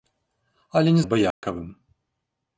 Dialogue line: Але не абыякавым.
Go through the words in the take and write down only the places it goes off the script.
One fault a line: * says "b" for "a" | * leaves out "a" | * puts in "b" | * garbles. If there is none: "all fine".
all fine